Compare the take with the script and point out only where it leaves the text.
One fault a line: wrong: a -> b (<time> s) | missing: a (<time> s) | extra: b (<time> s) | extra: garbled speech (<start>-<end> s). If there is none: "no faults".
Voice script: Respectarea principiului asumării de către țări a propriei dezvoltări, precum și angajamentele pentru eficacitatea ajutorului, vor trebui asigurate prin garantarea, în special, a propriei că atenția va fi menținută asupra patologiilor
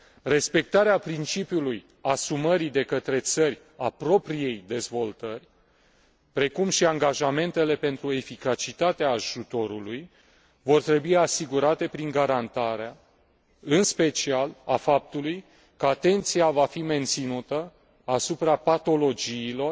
wrong: propriei -> faptului (14.8 s)